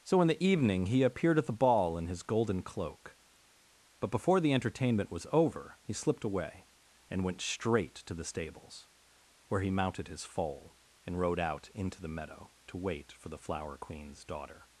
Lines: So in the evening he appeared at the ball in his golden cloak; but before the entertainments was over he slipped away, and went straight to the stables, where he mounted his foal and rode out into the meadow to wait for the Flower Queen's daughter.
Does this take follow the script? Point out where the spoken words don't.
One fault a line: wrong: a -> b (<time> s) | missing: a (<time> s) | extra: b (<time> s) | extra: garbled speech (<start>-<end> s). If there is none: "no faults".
wrong: entertainments -> entertainment (4.5 s)